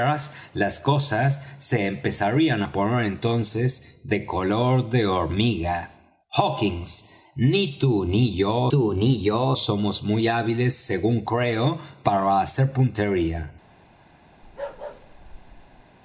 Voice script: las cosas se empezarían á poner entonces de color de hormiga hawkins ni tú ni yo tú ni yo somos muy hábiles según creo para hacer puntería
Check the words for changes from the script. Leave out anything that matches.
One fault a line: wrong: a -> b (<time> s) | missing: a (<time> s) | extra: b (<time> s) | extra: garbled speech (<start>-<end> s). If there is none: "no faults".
no faults